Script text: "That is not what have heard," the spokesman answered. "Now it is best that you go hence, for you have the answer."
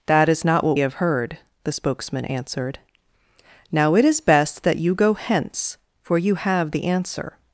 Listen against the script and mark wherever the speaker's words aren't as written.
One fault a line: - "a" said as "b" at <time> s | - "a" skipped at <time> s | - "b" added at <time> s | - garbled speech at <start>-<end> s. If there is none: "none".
none